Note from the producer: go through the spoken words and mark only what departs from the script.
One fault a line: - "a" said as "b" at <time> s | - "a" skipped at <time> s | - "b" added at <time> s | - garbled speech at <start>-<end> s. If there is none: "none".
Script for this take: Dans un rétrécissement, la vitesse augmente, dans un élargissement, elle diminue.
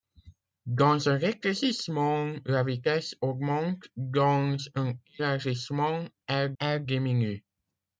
- "elle" added at 6.6 s